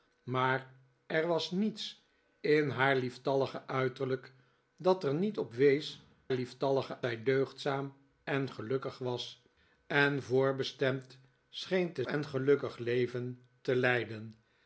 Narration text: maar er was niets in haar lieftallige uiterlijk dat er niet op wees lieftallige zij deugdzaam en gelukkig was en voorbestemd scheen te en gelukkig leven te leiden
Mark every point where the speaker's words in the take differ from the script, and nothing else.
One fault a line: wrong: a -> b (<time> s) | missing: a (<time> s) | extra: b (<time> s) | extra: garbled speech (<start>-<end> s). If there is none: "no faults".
no faults